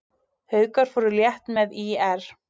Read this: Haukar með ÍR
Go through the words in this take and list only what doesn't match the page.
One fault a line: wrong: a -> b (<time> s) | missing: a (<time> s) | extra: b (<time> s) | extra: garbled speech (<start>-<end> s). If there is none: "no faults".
extra: fóru létt (0.9 s)